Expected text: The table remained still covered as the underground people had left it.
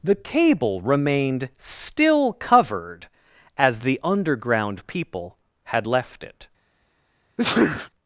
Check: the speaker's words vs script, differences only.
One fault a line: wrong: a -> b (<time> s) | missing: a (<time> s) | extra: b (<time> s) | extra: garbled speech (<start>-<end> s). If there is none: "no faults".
wrong: table -> cable (0.1 s)